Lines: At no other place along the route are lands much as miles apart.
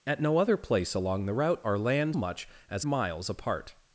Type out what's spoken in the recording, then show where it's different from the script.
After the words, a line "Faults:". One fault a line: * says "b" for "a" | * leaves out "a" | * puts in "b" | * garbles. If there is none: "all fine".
At no other place along the route are lands much as miles apart.
Faults:
all fine